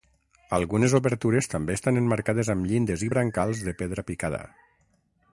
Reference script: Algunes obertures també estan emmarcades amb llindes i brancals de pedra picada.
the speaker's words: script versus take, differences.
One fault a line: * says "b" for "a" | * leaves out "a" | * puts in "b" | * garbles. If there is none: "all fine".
all fine